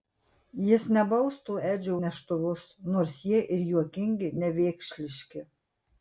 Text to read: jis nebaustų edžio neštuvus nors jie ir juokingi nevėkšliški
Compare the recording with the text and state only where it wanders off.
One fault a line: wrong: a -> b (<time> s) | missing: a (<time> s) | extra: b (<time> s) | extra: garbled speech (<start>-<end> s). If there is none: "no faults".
no faults